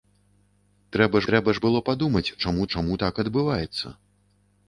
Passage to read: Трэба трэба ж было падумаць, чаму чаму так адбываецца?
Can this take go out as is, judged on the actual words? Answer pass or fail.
pass